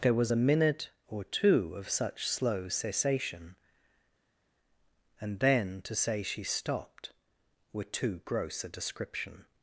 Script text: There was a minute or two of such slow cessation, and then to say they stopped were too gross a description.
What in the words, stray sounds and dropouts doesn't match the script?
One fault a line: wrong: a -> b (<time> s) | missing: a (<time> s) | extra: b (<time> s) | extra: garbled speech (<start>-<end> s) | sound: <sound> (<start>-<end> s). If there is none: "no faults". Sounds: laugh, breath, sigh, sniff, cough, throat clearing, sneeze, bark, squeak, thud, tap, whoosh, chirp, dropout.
wrong: they -> she (6.2 s)